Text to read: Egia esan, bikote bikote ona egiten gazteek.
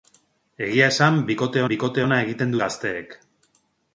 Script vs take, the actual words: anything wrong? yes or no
no